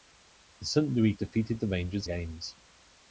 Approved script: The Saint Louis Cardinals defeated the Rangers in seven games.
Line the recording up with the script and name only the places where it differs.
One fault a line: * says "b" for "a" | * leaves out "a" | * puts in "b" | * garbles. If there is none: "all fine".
* leaves out "Cardinals"
* leaves out "in seven"